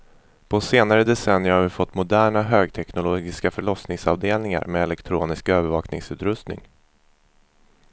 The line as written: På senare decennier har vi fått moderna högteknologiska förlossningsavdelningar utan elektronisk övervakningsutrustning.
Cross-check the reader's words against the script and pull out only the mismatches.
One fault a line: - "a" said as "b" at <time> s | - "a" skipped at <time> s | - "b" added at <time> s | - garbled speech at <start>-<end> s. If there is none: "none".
- "utan" said as "med" at 4.7 s